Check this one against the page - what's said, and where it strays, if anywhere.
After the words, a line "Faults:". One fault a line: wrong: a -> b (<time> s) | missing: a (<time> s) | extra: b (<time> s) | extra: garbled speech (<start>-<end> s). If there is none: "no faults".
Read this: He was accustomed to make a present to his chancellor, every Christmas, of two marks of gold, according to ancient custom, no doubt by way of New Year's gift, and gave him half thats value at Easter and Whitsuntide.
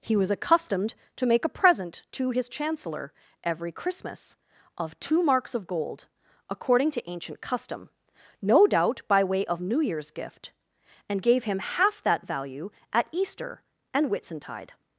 He was accustomed to make a present to his chancellor, every Christmas, of two marks of gold, according to ancient custom, no doubt by way of New Year's gift, and gave him half that value at Easter and Whitsuntide.
Faults:
wrong: thats -> that (12.0 s)